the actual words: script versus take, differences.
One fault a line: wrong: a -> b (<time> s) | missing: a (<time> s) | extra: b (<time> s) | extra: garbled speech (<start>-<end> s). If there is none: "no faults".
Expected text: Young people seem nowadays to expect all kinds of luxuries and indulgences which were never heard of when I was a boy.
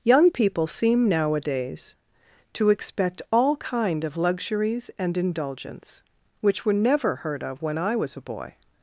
wrong: kinds -> kind (3.6 s)
wrong: indulgences -> indulgence (5.2 s)